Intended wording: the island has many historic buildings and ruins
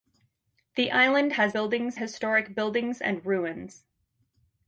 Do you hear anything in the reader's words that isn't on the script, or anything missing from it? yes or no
yes